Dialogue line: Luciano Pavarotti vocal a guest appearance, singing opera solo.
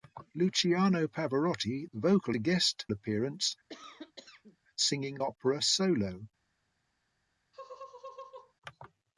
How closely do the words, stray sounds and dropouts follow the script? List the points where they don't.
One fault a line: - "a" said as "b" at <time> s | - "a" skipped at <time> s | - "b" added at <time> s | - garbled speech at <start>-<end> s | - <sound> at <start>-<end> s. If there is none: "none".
- cough at 3.7-4.6 s
- laugh at 7.5-8.5 s